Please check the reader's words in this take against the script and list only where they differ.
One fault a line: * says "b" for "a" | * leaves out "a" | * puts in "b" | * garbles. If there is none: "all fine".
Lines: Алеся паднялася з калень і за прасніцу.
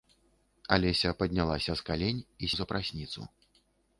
all fine